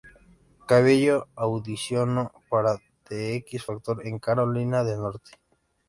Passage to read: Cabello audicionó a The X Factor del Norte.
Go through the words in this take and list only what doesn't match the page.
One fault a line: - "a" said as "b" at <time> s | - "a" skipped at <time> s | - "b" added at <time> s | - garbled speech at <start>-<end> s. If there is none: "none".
- "a" said as "para" at 2.5 s
- "en Carolina" added at 4.1 s